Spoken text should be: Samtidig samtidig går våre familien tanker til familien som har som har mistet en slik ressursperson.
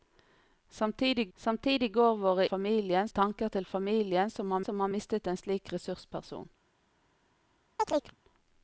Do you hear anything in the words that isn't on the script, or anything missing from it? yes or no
no